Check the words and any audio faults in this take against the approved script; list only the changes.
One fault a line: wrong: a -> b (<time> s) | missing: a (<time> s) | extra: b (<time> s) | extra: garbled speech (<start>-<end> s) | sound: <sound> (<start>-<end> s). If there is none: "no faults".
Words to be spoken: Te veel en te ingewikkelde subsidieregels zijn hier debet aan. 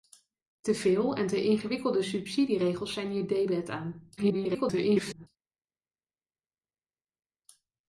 extra: garbled speech (4.2-5.3 s)